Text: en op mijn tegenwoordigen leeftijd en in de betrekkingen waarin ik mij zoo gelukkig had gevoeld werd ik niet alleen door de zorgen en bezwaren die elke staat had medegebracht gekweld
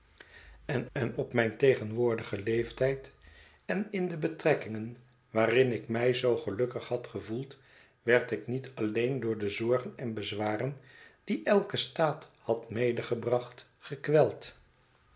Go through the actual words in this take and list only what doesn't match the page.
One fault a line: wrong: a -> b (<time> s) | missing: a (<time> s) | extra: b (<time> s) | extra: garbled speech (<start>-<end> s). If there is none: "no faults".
extra: en (0.9 s)